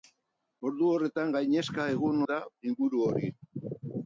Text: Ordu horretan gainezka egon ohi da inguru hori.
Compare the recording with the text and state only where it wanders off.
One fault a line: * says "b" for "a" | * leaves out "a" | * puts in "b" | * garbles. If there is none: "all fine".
* leaves out "ohi"